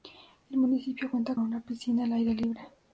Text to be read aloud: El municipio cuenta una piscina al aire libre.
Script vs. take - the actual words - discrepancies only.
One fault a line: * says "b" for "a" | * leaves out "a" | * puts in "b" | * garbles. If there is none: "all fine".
all fine